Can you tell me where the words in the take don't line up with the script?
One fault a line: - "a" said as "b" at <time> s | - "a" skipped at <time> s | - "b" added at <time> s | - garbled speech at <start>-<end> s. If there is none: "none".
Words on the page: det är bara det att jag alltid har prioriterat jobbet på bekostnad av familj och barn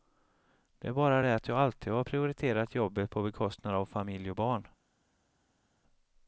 none